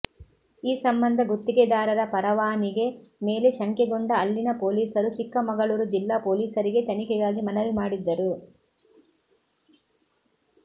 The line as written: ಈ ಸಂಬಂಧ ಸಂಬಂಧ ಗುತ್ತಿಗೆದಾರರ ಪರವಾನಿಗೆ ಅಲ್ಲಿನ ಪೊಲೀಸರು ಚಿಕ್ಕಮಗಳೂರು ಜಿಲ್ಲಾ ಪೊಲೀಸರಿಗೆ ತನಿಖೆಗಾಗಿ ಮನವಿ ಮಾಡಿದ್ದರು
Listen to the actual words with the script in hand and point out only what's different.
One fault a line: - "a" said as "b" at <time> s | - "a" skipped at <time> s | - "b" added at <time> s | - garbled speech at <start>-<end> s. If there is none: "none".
- "ಸಂಬಂಧ" skipped at 1.2 s
- "ಮೇಲೆ ಶಂಕೆಗೊಂಡ" added at 3.2 s